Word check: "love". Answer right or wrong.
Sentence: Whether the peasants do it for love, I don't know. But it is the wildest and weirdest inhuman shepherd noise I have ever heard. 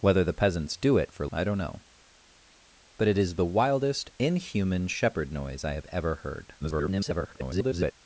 wrong